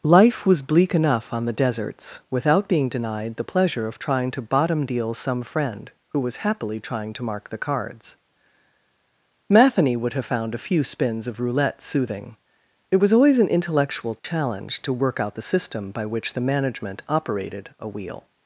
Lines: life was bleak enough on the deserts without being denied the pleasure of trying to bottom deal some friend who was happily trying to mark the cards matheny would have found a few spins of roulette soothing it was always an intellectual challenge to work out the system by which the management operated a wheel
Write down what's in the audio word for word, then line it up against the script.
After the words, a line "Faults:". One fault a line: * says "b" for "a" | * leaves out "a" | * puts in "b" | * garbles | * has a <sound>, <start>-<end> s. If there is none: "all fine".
life was bleak enough on the deserts without being denied the pleasure of trying to bottom deal some friend who was happily trying to mark the cards matheny would have found a few spins of roulette soothing it was always an intellectual challenge to work out the system by which the management operated a wheel
Faults:
* has a dropout, 14.2-14.2 s